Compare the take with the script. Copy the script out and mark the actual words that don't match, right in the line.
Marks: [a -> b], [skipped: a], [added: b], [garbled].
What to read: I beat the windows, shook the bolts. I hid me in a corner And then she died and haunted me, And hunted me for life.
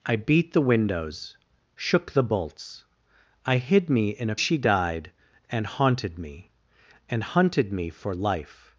I beat the windows, shook the bolts. I hid me in a [skipped: corner And then] she died and haunted me, And hunted me for life.